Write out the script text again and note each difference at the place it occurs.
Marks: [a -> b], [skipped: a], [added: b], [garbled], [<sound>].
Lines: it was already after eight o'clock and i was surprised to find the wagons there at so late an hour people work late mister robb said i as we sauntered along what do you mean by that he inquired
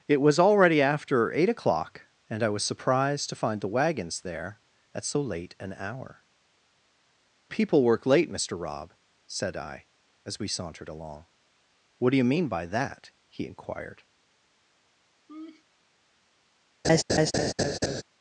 it was already after eight o'clock and i was surprised to find the wagons there at so late an hour people work late mister robb said i as we sauntered along what do you mean by that he inquired [laugh] [laugh]